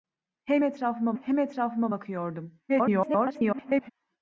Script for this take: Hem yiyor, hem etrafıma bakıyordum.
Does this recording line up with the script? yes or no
no